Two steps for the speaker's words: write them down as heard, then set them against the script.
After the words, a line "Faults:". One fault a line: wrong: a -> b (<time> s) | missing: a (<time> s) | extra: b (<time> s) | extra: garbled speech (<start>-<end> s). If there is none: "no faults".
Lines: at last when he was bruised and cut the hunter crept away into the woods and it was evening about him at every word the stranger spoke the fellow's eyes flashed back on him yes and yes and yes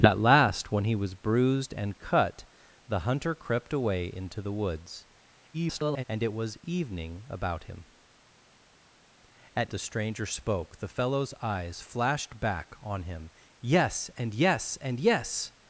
at last when he was bruised and cut the hunter crept away into the woods [garbled] and it was evening about him at the stranger spoke the fellow's eyes flashed back on him yes and yes and yes
Faults:
extra: garbled speech (5.5-6.0 s)
missing: every word (9.7 s)